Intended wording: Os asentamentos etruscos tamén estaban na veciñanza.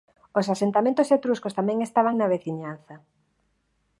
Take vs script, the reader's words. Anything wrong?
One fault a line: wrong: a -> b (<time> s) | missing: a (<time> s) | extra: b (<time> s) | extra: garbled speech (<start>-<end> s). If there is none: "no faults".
no faults